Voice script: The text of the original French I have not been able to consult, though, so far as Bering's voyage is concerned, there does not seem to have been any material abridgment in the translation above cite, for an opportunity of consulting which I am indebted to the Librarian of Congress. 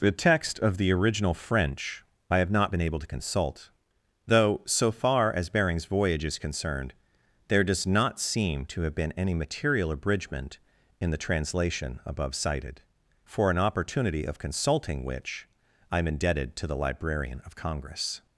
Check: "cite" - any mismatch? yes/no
yes